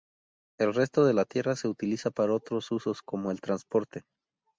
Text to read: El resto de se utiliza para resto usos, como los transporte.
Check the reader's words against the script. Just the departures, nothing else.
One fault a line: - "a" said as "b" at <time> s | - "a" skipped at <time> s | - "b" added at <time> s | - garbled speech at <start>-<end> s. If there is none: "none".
- "la tierra" added at 1.1 s
- "resto" said as "otros" at 2.3 s
- "los" said as "el" at 3.3 s